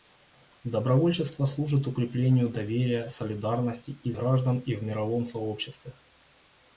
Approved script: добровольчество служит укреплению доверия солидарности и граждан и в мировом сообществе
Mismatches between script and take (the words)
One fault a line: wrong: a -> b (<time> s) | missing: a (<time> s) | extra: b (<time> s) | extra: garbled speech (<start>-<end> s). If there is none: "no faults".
no faults